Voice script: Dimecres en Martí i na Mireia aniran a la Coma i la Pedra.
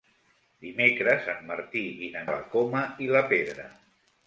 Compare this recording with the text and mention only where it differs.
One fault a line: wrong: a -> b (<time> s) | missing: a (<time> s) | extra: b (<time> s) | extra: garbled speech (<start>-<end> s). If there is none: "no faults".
missing: Mireia aniran (2.2 s)